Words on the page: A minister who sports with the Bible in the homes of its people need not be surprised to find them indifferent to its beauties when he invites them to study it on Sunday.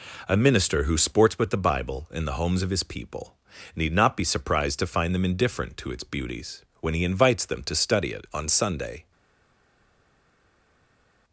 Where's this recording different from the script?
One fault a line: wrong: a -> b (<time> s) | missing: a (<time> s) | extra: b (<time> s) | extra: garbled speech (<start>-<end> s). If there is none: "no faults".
wrong: its -> his (2.7 s)